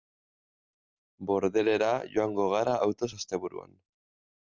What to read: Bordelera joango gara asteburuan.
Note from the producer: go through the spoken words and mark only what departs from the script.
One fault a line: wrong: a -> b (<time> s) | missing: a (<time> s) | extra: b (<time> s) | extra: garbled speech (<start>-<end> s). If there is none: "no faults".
extra: autoz (2.8 s)